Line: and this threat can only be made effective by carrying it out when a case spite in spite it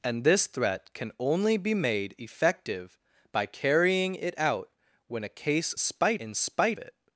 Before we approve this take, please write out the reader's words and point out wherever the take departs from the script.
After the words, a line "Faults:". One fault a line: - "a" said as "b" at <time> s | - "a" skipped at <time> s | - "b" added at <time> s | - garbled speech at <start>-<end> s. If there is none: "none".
and this threat can only be made effective by carrying it out when a case spite in spite it
Faults:
none